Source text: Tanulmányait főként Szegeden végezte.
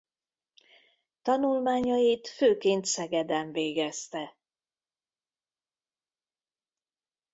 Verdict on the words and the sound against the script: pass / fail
pass